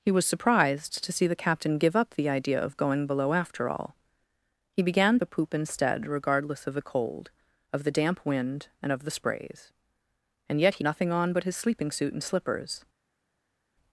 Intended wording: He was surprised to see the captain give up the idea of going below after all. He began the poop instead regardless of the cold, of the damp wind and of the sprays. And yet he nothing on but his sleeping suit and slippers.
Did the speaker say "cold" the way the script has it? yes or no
yes